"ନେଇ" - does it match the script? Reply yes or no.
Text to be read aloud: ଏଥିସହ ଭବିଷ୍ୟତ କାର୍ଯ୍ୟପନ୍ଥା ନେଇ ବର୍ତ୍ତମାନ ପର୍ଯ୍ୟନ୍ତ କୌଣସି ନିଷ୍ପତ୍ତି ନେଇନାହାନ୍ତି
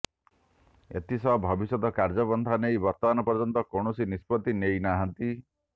yes